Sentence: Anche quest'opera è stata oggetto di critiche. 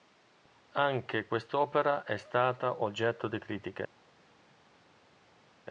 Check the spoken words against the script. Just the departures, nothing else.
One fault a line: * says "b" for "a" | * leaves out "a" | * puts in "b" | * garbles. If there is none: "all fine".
all fine